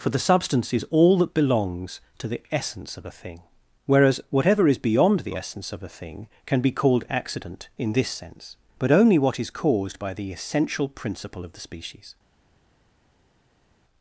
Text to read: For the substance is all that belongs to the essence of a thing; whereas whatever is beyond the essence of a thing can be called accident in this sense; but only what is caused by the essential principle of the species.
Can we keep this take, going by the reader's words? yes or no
yes